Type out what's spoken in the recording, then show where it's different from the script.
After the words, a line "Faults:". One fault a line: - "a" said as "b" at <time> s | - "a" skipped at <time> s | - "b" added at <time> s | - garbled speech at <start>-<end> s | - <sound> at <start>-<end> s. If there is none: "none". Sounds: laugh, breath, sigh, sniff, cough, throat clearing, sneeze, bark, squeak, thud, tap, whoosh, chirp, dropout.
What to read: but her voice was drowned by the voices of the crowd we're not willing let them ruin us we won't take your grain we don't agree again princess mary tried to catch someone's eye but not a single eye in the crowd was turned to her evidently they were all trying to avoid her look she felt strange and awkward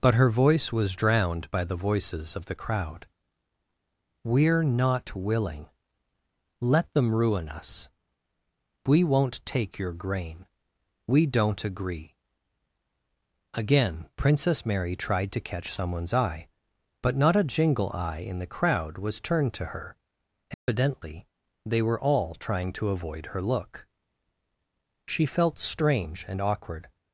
but her voice was drowned by the voices of the crowd we're not willing let them ruin us we won't take your grain we don't agree again princess mary tried to catch someone's eye but not a jingle eye in the crowd was turned to her evidently they were all trying to avoid her look she felt strange and awkward
Faults:
- "single" said as "jingle" at 17.4 s
- dropout at 20.5-20.7 s